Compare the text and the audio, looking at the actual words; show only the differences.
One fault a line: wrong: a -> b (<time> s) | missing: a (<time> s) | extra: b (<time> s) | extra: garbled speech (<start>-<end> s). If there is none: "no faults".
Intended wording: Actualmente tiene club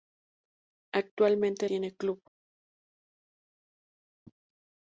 no faults